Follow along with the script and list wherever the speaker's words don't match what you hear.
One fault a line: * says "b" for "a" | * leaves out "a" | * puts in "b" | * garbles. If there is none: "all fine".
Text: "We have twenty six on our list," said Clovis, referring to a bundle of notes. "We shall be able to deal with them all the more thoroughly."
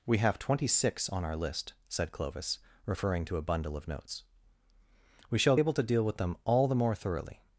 * leaves out "be"